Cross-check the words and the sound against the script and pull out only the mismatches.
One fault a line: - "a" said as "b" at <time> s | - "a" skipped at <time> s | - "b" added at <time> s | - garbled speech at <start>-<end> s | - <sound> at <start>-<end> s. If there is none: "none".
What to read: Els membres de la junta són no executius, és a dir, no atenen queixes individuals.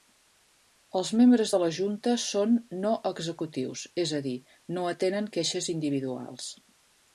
none